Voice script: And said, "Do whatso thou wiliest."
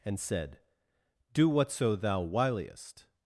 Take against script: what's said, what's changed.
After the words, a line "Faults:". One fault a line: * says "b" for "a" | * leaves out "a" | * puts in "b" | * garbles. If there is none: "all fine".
And said, "Do whatso thou wiliest."
Faults:
all fine